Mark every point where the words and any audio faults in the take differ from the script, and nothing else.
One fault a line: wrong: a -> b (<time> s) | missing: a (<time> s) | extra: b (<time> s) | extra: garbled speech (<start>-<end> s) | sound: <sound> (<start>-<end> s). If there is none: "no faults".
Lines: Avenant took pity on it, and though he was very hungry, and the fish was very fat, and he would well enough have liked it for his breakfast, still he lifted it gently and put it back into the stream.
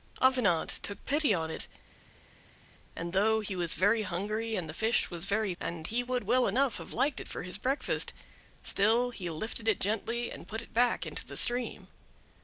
missing: fat (5.5 s)